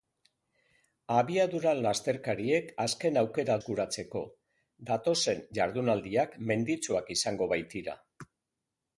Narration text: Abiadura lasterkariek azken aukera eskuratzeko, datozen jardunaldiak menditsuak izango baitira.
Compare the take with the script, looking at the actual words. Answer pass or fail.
pass